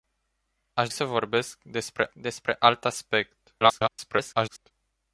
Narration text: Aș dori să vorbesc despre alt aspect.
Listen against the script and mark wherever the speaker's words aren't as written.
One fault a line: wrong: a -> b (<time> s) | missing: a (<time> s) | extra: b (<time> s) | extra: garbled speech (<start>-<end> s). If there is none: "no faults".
missing: dori (0.9 s)
extra: despre (2.1 s)
extra: garbled speech (3.6-4.7 s)